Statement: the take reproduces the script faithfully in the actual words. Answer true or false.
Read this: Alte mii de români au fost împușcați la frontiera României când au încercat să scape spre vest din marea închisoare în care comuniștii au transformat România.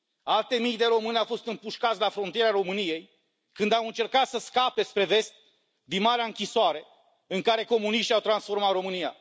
true